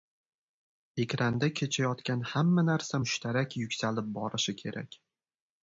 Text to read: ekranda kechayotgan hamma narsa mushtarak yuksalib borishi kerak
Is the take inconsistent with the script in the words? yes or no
no